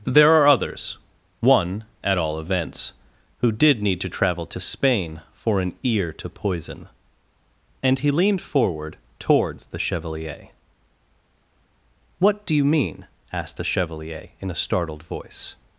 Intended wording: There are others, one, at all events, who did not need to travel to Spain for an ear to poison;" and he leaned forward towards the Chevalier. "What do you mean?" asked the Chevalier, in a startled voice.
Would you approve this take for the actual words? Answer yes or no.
no